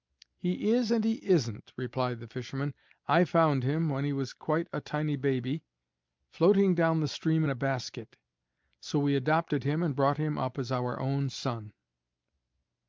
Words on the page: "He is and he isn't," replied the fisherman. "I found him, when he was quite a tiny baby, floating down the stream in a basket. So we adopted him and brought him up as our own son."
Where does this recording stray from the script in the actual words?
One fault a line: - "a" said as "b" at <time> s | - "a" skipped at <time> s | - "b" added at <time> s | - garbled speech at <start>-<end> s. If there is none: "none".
none